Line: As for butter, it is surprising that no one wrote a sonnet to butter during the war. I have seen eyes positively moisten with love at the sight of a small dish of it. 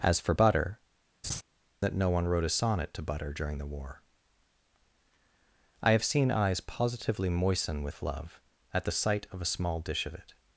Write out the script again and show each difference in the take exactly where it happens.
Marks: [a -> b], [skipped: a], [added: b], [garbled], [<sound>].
As for butter, [skipped: it is surprising] [laugh] that no one wrote a sonnet to butter during the war. I have seen eyes positively moisten with love at the sight of a small dish of it.